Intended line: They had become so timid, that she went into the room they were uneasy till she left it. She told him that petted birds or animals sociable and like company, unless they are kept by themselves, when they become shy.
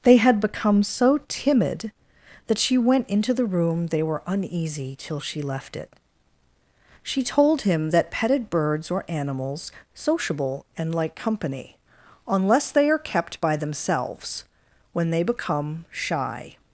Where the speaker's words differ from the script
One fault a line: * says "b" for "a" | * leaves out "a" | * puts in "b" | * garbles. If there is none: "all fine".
all fine